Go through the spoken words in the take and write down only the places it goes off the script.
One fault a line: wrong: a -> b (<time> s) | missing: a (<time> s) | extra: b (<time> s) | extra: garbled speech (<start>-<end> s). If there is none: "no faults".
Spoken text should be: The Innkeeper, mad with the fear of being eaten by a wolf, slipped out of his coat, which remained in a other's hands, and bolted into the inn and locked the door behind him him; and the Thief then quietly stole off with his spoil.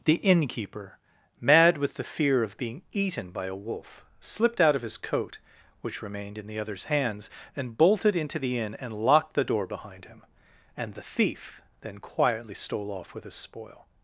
wrong: a -> the (6.5 s)
missing: him (10.2 s)